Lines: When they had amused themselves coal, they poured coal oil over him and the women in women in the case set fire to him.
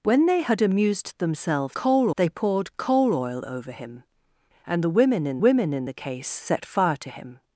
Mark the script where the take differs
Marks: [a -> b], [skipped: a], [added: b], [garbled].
When they had amused themselves coal, they poured coal oil over him and the women in women in the case set fire to him.